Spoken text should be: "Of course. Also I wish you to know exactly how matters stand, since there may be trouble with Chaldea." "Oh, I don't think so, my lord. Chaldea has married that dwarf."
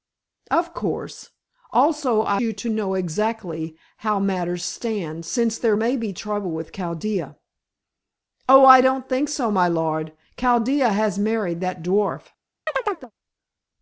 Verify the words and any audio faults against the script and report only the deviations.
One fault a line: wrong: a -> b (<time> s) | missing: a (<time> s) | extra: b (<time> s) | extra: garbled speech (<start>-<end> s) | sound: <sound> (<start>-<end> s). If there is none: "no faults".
missing: wish (2.4 s)
sound: chirp (12.7-13.1 s)